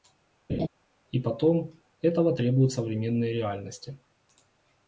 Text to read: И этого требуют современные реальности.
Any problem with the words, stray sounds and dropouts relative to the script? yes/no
yes